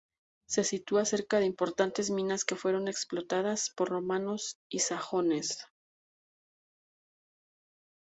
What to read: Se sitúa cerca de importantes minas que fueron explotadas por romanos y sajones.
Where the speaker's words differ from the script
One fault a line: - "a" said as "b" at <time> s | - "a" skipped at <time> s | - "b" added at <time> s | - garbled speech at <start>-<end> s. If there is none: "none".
none